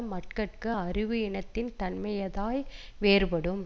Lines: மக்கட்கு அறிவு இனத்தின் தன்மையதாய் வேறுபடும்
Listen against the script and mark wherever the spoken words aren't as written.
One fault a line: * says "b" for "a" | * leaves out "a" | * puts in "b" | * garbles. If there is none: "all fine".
all fine